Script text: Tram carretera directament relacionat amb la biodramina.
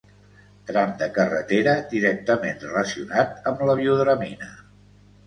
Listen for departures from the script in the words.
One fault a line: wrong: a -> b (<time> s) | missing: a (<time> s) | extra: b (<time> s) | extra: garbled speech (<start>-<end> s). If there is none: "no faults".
extra: de (1.0 s)